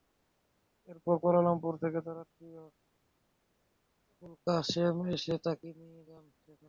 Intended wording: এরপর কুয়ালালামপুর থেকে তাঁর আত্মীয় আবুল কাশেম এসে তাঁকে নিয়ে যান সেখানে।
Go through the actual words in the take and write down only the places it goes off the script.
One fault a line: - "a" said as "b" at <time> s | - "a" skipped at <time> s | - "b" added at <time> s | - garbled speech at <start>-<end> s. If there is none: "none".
none